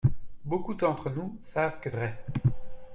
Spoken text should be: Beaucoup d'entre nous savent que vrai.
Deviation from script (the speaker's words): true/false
false